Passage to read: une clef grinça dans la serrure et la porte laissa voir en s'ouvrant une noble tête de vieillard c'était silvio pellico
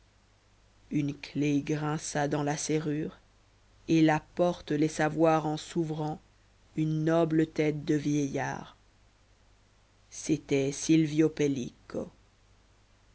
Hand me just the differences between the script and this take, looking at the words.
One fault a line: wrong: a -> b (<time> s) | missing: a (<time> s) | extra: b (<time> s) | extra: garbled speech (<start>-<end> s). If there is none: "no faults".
no faults